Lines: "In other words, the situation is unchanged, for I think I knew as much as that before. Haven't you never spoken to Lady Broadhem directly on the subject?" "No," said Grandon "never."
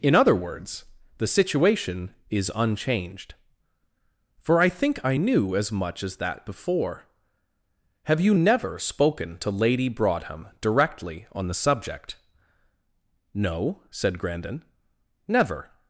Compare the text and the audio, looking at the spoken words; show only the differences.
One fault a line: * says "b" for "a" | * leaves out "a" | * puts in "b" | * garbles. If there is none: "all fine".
* says "Have" for "Haven't"